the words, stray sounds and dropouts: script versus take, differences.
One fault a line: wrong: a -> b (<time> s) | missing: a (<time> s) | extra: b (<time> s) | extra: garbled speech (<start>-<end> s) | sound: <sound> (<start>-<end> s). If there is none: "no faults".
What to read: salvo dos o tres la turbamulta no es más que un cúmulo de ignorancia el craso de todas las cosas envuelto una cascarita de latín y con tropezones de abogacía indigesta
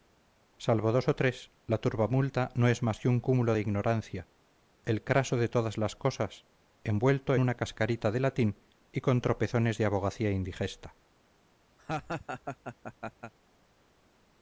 sound: laugh (11.8-13.3 s)